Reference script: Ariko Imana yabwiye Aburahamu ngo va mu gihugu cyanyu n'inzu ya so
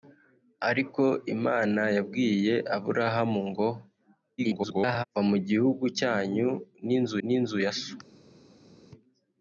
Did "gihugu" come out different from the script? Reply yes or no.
no